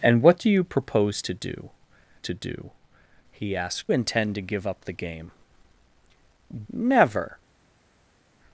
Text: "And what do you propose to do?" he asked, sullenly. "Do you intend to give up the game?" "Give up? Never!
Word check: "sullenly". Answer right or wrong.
wrong